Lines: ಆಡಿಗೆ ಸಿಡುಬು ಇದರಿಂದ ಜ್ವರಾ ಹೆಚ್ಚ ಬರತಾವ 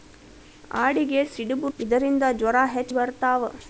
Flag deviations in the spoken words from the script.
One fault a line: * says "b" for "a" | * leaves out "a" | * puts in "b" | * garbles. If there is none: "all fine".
all fine